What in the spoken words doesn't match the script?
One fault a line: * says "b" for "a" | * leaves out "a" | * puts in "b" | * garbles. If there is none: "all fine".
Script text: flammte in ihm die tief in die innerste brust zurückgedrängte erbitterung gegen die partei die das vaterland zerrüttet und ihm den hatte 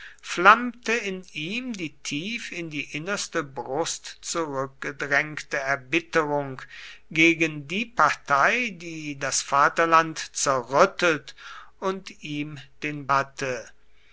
all fine